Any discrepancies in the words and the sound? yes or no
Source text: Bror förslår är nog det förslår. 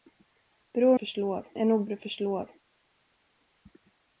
no